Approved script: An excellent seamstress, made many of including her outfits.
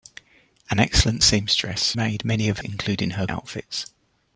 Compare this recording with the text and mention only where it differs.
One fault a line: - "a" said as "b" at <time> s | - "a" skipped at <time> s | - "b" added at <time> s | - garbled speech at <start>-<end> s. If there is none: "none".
none